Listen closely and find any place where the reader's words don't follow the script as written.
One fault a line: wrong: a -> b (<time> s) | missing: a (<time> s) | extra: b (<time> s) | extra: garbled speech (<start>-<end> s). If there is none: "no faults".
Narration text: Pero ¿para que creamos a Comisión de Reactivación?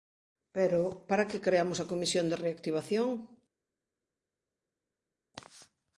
no faults